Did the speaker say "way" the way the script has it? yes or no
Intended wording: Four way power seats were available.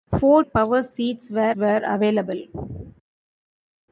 no